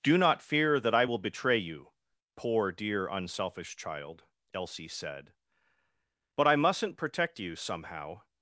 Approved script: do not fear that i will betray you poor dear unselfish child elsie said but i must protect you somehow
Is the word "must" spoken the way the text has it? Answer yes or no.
no